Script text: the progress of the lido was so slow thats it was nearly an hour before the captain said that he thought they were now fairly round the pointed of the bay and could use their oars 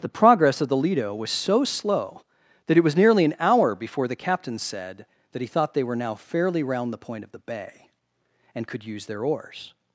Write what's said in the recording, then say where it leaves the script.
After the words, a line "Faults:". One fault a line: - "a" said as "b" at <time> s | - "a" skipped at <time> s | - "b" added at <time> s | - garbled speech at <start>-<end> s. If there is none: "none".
the progress of the lido was so slow that it was nearly an hour before the captain said that he thought they were now fairly round the point of the bay and could use their oars
Faults:
- "thats" said as "that" at 2.7 s
- "pointed" said as "point" at 7.0 s